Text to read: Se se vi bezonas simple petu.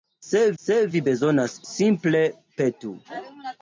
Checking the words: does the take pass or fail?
pass